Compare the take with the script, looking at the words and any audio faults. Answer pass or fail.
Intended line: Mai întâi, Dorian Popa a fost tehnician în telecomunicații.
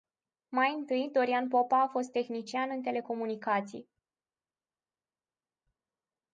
pass